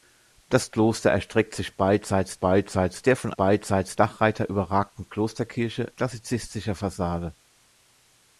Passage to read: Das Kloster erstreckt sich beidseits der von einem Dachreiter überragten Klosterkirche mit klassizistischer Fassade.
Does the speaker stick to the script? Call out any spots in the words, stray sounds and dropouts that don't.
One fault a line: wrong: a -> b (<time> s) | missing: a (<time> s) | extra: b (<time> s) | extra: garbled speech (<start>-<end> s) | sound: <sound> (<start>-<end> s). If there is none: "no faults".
extra: beidseits (2.4 s)
wrong: einem -> beidseits (3.4 s)
missing: mit (5.9 s)